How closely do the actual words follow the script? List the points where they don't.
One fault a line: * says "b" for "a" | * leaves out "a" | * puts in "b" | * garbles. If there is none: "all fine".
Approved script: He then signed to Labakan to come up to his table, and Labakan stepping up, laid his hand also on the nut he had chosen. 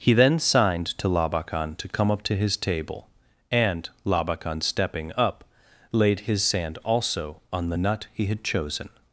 * says "sand" for "hand"